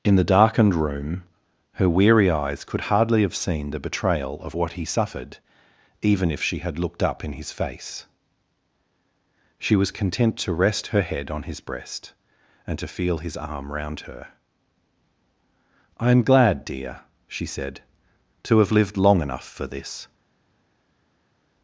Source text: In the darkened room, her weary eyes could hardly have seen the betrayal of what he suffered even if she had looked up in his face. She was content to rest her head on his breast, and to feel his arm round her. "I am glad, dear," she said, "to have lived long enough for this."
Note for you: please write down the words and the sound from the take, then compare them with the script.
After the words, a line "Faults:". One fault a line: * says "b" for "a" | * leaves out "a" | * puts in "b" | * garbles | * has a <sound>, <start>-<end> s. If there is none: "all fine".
In the darkened room, her weary eyes could hardly have seen the betrayal of what he suffered even if she had looked up in his face. She was content to rest her head on his breast, and to feel his arm round her. "I am glad, dear," she said, "to have lived long enough for this."
Faults:
all fine